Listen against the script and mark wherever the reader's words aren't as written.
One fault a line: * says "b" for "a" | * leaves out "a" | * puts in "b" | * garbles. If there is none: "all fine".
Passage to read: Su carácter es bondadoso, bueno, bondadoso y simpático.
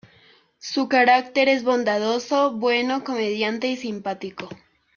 * says "comediante" for "bondadoso"